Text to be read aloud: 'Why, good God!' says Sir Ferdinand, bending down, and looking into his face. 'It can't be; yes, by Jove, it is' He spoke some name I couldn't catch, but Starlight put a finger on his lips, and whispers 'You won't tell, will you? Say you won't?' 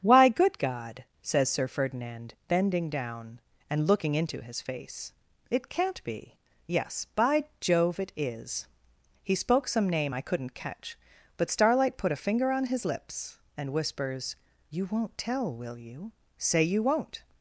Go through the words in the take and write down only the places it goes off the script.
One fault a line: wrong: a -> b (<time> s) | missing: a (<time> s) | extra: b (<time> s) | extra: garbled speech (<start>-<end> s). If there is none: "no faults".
no faults